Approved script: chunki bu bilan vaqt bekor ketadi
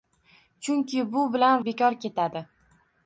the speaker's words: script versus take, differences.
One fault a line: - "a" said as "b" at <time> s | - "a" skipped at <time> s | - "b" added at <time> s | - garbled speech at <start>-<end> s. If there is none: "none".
- "vaqt" skipped at 1.6 s